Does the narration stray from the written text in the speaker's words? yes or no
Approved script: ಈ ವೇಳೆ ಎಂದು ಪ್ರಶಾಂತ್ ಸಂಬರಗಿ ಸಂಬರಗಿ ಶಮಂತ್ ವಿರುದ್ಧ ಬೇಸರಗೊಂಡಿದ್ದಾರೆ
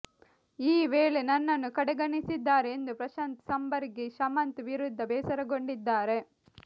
yes